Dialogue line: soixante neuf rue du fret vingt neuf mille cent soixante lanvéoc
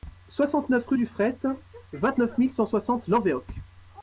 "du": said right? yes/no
yes